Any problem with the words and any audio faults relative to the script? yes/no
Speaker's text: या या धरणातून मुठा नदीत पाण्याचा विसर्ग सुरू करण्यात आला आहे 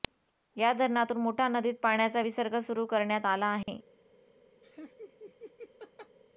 yes